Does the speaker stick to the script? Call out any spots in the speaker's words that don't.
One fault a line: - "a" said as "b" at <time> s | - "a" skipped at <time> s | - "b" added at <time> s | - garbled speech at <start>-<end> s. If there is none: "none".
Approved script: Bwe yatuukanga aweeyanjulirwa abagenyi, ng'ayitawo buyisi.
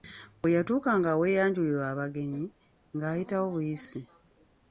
none